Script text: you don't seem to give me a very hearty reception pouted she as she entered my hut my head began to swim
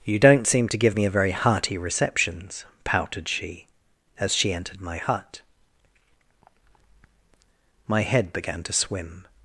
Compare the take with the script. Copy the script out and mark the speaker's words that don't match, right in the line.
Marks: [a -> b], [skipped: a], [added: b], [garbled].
you don't seem to give me a very hearty [reception -> receptions] pouted she as she entered my hut my head began to swim